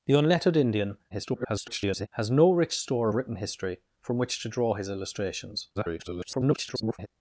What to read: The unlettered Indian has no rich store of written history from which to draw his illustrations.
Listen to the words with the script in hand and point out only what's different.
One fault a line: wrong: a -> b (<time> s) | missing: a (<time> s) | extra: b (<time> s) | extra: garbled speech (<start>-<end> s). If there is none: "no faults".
extra: garbled speech (1.1-2.1 s)
missing: of (3.1 s)
extra: garbled speech (5.8-7.1 s)